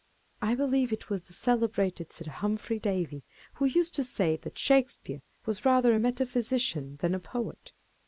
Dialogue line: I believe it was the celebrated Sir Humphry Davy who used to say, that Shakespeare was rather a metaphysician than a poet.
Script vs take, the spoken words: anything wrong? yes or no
no